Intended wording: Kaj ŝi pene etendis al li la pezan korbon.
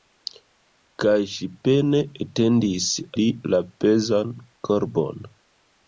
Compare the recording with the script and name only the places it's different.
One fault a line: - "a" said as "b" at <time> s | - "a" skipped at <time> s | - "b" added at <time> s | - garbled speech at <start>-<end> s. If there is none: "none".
- "al" skipped at 2.9 s